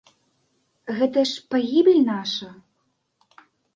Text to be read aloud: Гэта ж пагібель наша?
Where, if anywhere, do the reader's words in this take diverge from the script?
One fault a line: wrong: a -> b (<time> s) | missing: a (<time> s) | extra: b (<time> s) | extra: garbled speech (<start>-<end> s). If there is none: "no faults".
no faults